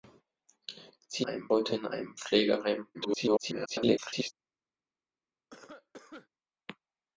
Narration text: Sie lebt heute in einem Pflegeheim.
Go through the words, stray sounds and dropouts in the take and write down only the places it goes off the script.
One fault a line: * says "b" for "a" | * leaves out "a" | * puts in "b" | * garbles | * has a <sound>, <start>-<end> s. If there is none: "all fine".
* says "einem" for "lebt"
* garbles
* has a cough, 5.5-6.3 s